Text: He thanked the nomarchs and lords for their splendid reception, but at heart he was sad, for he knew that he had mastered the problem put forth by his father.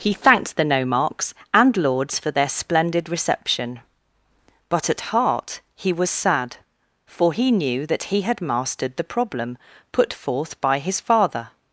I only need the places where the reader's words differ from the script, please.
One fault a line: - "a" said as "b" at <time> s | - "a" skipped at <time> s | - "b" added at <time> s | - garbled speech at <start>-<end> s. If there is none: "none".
none